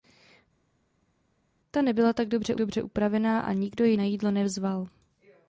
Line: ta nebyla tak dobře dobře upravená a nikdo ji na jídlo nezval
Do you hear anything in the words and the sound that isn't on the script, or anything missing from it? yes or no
no